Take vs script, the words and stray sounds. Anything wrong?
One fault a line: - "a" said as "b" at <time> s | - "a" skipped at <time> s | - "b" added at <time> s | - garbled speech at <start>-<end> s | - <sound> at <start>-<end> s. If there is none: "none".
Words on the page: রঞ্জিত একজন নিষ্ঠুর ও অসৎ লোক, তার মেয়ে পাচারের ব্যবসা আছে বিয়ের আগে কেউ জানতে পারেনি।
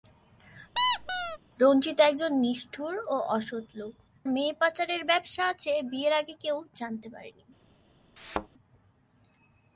- squeak at 0.7-1.4 s
- "তার" skipped at 3.9 s
- thud at 8.2-8.5 s